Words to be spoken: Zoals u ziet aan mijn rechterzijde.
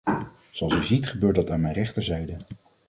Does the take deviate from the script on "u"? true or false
false